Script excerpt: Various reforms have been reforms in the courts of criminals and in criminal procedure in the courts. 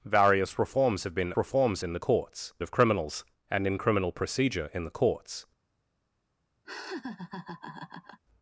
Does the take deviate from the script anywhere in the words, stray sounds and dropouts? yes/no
yes